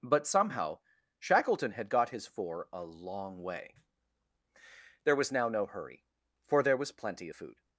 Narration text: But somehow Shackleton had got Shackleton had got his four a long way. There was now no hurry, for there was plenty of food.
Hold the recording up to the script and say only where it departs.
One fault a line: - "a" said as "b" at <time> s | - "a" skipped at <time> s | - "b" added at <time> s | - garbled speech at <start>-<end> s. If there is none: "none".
- "Shackleton had got" skipped at 2.1 s